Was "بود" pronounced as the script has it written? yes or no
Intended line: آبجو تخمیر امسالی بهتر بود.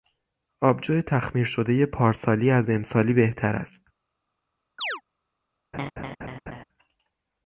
no